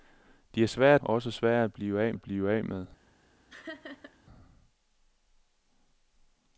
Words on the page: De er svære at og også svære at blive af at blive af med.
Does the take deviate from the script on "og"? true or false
false